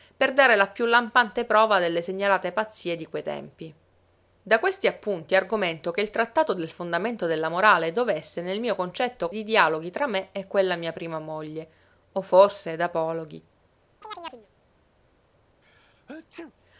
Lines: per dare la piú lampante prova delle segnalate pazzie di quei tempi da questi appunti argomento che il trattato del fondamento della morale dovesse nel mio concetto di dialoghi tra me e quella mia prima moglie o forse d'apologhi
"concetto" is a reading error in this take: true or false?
false